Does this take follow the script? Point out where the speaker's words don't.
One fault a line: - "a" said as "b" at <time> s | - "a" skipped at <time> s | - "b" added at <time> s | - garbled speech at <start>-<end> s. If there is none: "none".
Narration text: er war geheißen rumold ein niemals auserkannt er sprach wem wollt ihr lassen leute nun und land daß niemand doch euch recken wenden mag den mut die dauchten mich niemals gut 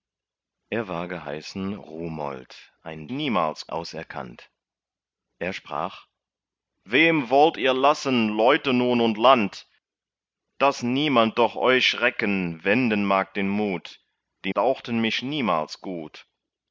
none